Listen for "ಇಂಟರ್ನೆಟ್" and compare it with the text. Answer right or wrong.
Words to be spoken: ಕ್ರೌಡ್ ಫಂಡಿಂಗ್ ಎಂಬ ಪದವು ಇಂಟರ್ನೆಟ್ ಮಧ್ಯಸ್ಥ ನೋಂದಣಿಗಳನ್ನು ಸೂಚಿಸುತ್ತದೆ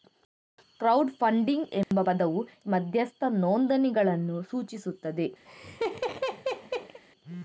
wrong